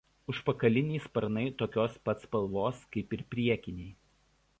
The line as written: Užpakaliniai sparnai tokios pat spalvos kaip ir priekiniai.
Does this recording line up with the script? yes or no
yes